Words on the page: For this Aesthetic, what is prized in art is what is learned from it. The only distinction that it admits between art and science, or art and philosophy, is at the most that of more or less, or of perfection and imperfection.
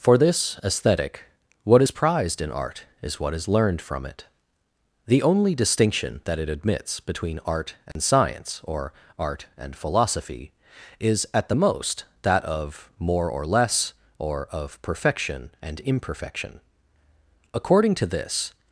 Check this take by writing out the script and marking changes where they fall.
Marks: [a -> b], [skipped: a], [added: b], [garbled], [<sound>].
For this Aesthetic, what is prized in art is what is learned from it. The only distinction that it admits between art and [dropout] science, or art and philosophy, is at the most that of more or less, or of perfection and imperfection. [added: According to this]